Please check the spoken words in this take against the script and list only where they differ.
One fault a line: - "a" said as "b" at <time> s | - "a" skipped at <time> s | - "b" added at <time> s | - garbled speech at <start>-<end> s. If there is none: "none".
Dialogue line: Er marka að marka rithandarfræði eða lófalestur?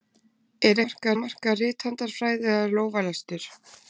none